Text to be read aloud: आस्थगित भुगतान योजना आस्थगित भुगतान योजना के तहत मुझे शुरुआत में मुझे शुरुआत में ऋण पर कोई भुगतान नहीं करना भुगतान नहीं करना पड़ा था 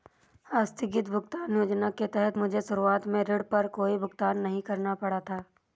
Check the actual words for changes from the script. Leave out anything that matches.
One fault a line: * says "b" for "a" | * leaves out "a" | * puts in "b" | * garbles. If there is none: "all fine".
* leaves out "आस्थगित भुगतान योजना"
* leaves out "मुझे शुरुआत में"
* leaves out "भुगतान नहीं करना"